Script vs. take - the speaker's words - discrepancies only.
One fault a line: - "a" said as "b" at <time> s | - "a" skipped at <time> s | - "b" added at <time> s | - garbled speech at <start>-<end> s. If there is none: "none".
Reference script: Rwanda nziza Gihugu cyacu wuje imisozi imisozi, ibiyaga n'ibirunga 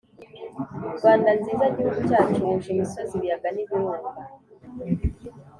- "imisozi" skipped at 3.1 s